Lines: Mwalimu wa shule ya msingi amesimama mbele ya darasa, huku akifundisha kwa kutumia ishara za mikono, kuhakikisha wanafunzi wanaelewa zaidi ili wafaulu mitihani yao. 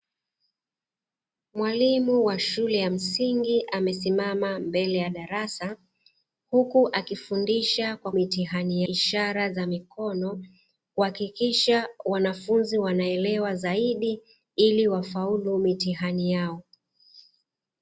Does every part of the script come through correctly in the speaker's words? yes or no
no